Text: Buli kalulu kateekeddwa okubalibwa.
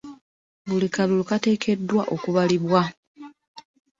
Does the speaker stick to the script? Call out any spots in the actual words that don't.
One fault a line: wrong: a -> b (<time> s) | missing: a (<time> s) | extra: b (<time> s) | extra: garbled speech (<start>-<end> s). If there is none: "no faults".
no faults